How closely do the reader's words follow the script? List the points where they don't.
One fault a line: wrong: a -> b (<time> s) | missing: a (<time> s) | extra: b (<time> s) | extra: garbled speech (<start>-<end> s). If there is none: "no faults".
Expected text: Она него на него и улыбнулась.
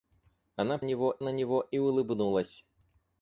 no faults